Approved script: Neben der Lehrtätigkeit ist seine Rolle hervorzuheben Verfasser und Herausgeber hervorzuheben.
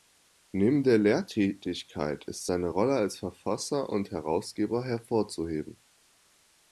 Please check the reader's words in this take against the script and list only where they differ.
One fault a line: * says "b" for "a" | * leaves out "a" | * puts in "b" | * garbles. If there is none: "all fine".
* says "als" for "hervorzuheben"